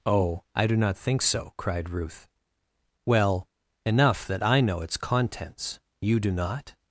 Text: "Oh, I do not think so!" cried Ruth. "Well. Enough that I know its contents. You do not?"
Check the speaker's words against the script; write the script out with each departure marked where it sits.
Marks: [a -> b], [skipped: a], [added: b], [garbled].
"Oh, I do not think so!" cried Ruth. "Well. Enough that I know its contents. You do not?"